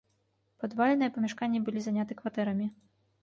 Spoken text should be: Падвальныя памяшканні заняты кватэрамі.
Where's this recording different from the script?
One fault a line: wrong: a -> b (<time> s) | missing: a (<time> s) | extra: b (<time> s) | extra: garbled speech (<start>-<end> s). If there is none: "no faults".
extra: былі (1.7 s)